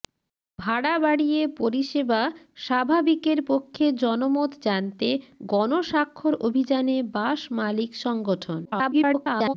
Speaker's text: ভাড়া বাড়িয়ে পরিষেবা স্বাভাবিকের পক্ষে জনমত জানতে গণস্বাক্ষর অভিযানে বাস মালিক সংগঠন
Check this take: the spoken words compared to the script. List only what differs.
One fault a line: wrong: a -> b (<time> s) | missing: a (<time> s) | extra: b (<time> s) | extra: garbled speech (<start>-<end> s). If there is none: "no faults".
extra: garbled speech (8.6-9.5 s)